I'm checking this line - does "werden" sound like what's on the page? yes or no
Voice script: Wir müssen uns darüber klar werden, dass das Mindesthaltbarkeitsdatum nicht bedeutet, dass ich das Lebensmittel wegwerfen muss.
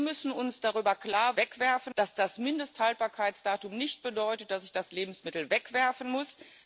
no